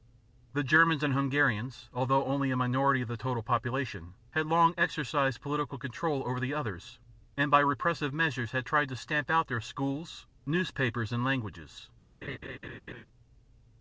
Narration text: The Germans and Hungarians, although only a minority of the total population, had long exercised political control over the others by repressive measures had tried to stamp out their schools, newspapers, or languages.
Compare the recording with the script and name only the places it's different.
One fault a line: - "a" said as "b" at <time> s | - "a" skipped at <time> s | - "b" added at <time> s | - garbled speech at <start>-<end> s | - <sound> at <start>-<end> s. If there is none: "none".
- "and" added at 7.4 s
- "or" said as "and" at 11.1 s
- laugh at 12.2-13.1 s